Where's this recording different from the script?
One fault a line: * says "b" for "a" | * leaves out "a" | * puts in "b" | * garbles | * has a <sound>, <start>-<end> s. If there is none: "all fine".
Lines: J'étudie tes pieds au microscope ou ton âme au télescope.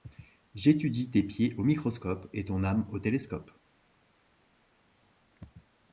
* says "et" for "ou"